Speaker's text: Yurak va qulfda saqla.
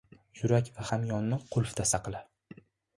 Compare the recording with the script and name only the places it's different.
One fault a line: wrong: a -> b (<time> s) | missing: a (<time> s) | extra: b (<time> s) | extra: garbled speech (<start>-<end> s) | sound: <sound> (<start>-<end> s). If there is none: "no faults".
extra: hamyonni (0.9 s)